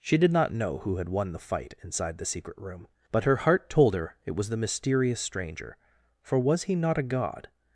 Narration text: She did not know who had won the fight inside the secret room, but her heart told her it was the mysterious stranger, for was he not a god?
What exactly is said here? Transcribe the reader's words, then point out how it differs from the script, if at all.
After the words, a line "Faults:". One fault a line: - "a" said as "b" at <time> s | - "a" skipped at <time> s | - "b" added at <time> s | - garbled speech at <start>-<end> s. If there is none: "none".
She did not know who had won the fight inside the secret room, but her heart told her it was the mysterious stranger, for was he not a god?
Faults:
none